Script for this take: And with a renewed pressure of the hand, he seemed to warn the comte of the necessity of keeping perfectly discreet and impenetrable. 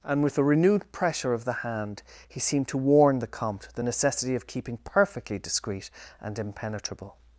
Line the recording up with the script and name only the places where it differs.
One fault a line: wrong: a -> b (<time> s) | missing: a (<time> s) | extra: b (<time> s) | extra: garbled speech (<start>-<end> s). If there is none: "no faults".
missing: of (3.7 s)